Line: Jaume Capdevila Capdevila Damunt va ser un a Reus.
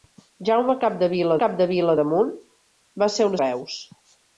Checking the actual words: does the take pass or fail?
pass